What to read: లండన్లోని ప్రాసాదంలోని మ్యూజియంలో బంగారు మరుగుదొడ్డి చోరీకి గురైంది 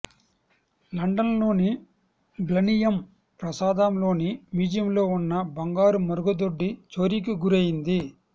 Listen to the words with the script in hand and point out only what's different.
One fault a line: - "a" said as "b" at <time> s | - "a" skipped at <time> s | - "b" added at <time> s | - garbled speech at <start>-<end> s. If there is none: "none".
- "బ్లనియమ్" added at 2.4 s
- "ఉన్న" added at 5.2 s